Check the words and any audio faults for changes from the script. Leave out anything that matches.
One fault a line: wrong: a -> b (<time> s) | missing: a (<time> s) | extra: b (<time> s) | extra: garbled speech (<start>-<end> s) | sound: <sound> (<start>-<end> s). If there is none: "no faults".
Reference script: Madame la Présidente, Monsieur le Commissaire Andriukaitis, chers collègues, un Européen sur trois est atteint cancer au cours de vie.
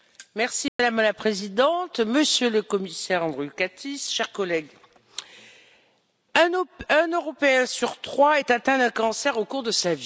sound: dropout (0.7-0.8 s)
extra: d'un (8.8 s)
extra: sa (9.7 s)